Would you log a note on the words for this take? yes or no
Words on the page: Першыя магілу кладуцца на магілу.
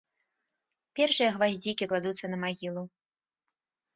yes